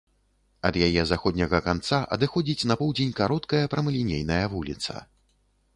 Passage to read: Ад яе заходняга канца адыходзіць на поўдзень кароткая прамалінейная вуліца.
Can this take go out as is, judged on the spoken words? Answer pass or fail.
pass